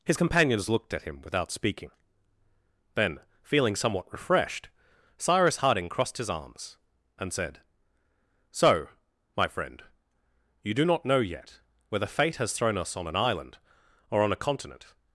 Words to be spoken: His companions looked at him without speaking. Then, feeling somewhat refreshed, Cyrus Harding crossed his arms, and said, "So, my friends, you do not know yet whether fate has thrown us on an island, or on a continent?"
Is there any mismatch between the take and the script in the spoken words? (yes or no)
yes